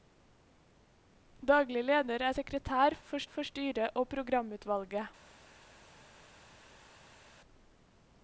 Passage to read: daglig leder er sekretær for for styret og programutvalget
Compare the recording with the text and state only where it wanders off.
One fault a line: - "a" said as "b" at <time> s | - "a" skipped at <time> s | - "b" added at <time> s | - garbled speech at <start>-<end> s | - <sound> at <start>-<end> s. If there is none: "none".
none